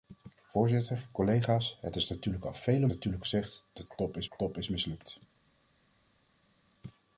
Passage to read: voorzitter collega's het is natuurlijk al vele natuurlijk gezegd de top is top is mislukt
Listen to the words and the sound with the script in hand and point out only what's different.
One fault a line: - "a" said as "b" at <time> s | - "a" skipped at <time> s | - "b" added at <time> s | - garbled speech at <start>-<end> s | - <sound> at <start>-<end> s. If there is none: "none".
none